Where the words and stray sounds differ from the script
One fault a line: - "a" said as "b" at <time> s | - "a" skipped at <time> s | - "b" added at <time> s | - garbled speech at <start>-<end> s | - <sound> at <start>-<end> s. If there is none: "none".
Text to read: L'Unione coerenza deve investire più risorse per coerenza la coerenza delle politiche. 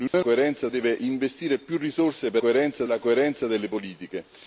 - dropout at 0.1-0.1 s